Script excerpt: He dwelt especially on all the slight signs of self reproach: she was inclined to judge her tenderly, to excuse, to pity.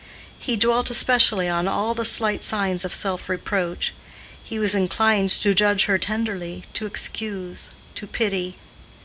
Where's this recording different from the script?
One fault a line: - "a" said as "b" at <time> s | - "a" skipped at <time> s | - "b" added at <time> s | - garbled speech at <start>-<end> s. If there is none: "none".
- "she" said as "he" at 4.4 s